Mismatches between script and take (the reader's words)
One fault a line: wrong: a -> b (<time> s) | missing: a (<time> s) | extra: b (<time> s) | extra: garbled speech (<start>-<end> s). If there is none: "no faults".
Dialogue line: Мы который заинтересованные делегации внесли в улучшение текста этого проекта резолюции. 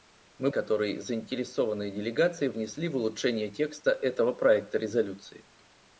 no faults